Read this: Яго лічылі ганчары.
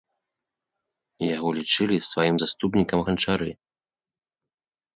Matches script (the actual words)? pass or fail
fail